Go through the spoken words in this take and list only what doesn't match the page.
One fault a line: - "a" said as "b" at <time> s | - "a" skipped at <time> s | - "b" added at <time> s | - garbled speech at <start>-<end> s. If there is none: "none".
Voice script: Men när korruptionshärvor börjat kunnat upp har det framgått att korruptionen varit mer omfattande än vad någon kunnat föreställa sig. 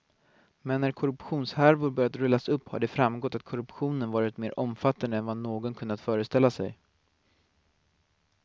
- "kunnat" said as "rullas" at 2.1 s